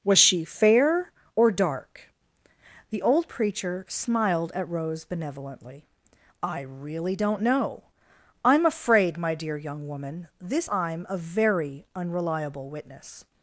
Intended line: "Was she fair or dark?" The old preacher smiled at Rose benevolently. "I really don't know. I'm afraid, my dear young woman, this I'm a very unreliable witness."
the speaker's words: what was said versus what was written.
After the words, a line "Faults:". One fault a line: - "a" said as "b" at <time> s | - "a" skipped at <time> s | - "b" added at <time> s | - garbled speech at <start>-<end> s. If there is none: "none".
"Was she fair or dark?" The old preacher smiled at Rose benevolently. "I really don't know. I'm afraid, my dear young woman, this I'm a very unreliable witness."
Faults:
none